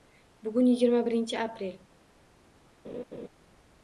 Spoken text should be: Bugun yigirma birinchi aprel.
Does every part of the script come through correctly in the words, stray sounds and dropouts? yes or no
no